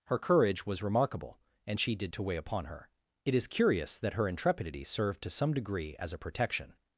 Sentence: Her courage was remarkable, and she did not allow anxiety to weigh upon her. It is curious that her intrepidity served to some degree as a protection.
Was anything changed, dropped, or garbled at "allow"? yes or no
yes